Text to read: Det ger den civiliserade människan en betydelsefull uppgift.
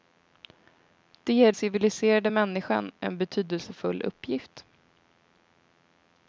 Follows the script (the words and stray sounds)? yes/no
no